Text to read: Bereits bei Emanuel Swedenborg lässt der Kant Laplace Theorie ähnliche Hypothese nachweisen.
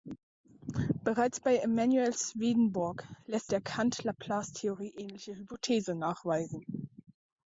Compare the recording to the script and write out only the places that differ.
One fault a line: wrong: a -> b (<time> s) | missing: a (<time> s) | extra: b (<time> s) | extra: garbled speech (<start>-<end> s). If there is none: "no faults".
no faults